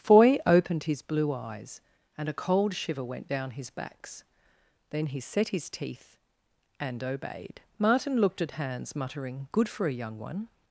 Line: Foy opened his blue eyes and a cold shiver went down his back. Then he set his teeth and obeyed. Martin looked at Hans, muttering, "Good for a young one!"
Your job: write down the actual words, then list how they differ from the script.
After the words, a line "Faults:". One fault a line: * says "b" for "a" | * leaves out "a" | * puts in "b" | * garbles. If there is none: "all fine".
Foy opened his blue eyes and a cold shiver went down his backs. Then he set his teeth and obeyed. Martin looked at Hans, muttering, "Good for a young one!"
Faults:
* says "backs" for "back"